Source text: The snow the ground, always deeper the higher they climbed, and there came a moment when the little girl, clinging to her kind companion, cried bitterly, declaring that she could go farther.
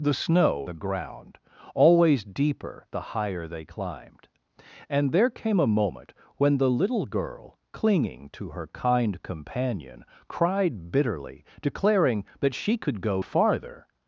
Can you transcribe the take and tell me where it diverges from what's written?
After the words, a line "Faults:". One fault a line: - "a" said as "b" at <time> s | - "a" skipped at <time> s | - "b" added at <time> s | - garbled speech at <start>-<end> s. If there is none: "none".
The snow the ground, always deeper the higher they climbed, and there came a moment when the little girl, clinging to her kind companion, cried bitterly, declaring that she could go farther.
Faults:
none